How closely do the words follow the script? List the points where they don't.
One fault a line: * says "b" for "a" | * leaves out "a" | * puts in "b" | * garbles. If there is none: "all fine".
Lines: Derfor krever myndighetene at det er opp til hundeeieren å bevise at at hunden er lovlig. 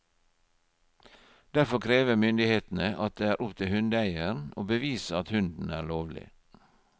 * leaves out "at"